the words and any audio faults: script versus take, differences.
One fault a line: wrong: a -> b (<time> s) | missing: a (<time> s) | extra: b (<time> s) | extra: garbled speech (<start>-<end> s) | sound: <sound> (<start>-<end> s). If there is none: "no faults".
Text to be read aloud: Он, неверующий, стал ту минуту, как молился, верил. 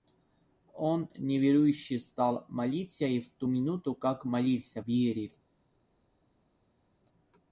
extra: молиться и в (2.5 s)